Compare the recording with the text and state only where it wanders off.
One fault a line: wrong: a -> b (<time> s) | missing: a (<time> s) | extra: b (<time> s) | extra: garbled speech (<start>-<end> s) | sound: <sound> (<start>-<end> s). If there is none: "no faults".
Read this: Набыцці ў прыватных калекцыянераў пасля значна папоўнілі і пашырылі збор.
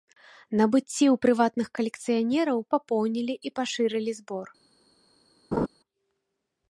missing: пасля значна (2.6 s)
sound: laugh (5.5-5.7 s)